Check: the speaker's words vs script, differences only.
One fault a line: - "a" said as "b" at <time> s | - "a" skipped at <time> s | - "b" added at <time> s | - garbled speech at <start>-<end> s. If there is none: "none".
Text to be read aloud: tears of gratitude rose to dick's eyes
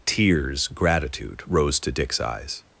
- "of" skipped at 0.7 s